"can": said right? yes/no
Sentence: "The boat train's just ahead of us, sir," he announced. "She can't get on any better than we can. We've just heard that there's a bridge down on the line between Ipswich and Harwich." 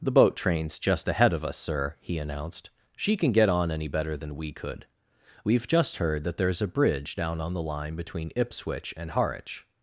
no